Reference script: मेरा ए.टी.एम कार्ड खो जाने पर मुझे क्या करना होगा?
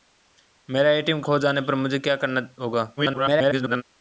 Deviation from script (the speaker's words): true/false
true